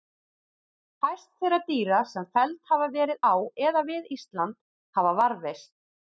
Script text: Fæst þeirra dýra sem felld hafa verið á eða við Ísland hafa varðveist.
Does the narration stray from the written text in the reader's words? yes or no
no